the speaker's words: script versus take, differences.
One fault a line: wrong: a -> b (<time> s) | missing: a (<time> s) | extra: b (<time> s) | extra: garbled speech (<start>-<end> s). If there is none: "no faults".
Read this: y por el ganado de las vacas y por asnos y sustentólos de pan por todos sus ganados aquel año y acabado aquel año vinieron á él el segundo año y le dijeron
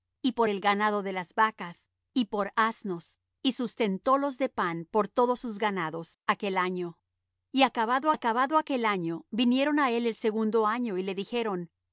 extra: acabado (8.1 s)